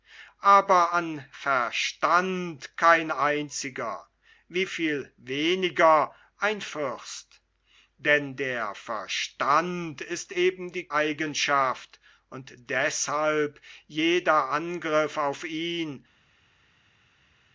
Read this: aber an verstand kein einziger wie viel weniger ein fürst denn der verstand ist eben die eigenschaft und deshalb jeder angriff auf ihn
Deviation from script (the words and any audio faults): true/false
false